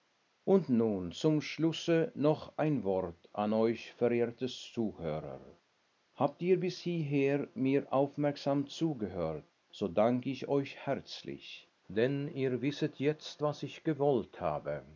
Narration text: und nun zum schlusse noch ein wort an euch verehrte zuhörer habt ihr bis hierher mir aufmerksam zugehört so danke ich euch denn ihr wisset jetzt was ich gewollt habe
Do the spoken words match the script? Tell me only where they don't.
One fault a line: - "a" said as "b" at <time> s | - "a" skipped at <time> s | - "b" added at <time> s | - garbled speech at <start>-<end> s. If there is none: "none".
- "herzlich" added at 10.8 s